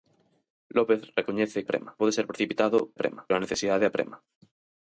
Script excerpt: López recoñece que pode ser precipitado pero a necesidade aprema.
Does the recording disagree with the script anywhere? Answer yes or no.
yes